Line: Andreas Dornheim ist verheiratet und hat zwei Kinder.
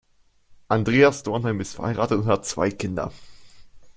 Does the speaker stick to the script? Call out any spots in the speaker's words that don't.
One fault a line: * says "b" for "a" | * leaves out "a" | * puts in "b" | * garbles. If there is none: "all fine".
all fine